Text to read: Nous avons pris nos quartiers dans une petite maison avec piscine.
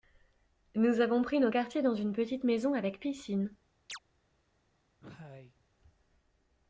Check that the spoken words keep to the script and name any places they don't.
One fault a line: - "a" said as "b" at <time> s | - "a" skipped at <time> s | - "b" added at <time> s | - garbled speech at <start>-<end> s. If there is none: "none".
none